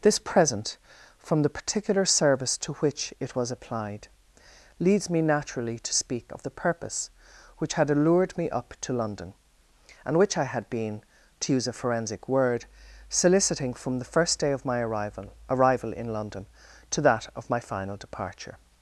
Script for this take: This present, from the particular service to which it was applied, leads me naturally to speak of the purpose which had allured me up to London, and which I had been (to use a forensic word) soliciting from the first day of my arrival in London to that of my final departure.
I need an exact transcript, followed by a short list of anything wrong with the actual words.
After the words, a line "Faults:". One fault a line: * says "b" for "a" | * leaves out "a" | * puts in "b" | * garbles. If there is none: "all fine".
This present, from the particular service to which it was applied, leads me naturally to speak of the purpose which had allured me up to London, and which I had been (to use a forensic word) soliciting from the first day of my arrival arrival in London to that of my final departure.
Faults:
* puts in "arrival"